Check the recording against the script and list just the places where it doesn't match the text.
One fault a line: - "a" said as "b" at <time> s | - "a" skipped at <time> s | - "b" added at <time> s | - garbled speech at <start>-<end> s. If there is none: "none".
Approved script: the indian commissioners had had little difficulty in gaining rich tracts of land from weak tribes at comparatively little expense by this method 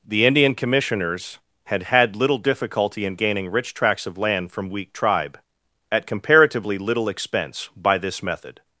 - "tribes" said as "tribe" at 4.9 s